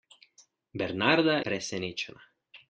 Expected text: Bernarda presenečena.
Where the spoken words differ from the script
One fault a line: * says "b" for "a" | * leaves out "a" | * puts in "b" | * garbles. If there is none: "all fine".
all fine